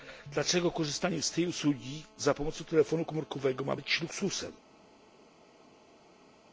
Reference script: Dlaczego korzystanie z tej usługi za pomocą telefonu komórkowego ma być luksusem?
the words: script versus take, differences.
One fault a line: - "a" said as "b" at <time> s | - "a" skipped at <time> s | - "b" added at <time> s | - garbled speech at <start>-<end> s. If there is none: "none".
none